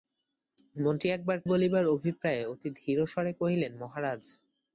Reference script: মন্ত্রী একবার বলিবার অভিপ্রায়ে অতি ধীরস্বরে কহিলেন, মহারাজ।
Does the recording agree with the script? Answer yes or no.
yes